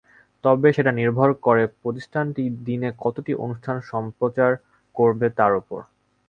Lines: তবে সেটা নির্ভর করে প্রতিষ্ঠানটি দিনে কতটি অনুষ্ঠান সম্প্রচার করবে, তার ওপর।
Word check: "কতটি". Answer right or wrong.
right